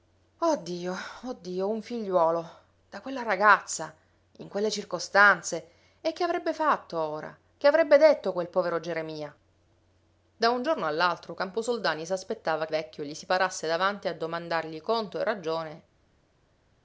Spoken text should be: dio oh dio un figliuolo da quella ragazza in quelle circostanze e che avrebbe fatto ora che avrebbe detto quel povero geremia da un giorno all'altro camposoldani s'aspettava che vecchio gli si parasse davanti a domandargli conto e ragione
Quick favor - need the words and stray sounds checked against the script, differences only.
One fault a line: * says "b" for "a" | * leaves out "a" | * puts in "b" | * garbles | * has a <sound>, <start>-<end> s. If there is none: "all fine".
all fine